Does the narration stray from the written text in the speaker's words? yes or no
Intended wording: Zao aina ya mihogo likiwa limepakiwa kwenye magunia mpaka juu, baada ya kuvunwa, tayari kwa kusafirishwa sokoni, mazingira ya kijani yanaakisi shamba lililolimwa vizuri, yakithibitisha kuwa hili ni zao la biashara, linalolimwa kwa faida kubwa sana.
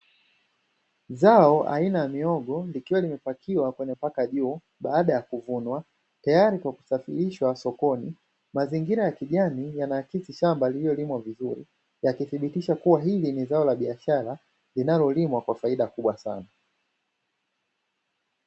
yes